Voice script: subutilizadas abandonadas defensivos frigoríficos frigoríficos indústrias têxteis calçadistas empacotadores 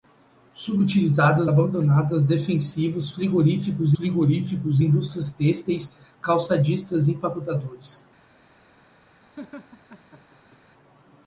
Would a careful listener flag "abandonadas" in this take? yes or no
no